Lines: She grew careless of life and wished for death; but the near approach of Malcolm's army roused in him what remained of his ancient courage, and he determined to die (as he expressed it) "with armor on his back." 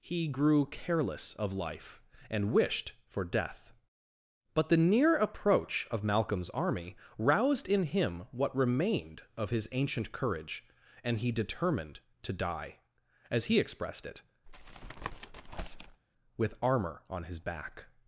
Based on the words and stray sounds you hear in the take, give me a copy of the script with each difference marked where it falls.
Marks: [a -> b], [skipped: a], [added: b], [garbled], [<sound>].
[She -> He] grew careless of life and wished for death; but the near approach of Malcolm's army roused in him what remained of his ancient courage, and he determined to die (as he expressed it) [tap] "with armor on his back."